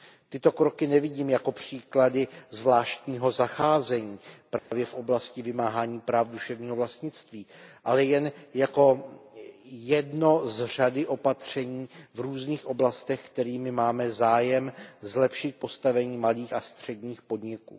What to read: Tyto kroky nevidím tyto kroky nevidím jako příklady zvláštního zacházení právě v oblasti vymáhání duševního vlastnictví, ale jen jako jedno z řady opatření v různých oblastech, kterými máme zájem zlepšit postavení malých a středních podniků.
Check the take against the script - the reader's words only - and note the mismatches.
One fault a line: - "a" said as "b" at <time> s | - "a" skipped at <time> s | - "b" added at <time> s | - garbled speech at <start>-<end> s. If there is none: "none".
- "tyto kroky nevidím" skipped at 1.3 s
- "práv" added at 6.0 s